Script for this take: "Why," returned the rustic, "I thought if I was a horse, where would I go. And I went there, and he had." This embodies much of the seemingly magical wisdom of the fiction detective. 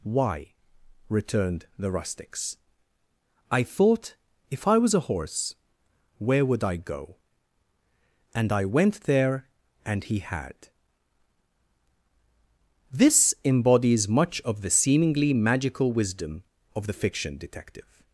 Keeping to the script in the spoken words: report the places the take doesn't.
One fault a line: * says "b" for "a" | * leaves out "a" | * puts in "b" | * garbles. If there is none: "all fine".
* says "rustics" for "rustic"